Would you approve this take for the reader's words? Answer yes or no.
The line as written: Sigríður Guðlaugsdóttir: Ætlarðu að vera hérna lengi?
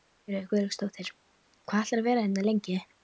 no